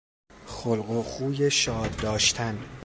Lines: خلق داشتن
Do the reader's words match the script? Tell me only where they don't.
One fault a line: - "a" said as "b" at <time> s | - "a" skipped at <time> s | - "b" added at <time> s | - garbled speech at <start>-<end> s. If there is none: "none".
- "و خوی شاد" added at 0.9 s